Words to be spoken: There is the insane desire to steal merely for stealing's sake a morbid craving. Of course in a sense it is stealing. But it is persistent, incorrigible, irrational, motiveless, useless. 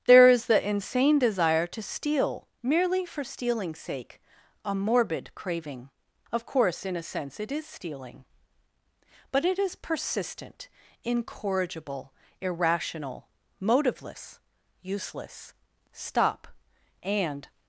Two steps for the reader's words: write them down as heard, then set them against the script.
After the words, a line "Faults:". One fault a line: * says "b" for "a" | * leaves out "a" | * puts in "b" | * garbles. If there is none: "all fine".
There is the insane desire to steal merely for stealing's sake a morbid craving. Of course in a sense it is stealing. But it is persistent, incorrigible, irrational, motiveless, useless. "Stop and
Faults:
* puts in "Stop and"